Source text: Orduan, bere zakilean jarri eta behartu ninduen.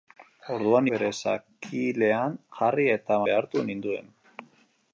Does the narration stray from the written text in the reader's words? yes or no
no